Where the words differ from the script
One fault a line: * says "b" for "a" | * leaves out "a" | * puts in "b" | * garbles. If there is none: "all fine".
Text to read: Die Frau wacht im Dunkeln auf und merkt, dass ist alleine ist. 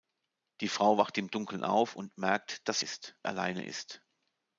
all fine